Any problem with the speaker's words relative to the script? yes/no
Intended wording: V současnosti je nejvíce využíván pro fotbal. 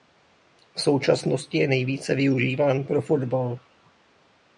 no